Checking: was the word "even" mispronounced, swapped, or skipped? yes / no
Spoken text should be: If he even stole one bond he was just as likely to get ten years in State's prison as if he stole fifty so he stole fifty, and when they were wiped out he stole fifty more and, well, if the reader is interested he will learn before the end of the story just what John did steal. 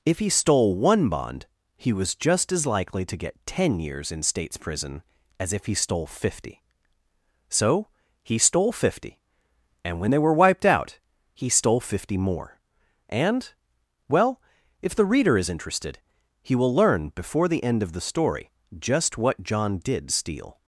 yes